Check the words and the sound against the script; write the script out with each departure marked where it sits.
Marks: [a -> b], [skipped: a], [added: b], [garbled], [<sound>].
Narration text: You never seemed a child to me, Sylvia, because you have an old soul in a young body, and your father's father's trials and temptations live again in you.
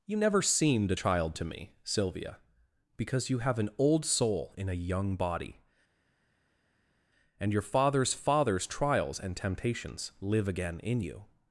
You never seemed a child to me, Sylvia, because you have an old soul in a young body, and your father's father's trials and temptations live again in you.